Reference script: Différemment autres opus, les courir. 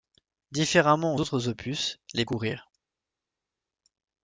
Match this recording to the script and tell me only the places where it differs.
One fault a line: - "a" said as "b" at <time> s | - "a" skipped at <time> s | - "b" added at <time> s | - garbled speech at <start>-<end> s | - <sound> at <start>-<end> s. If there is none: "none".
none